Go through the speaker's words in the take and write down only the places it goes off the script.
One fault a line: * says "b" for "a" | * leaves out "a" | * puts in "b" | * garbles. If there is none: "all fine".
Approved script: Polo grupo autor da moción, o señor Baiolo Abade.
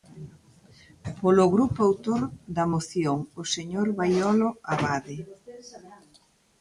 all fine